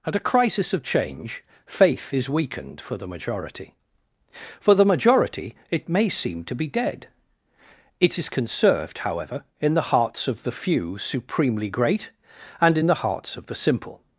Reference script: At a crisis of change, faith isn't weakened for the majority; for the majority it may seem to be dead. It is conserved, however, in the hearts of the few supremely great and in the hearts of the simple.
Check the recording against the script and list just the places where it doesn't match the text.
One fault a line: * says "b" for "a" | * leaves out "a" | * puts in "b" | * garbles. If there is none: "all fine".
* says "is" for "isn't"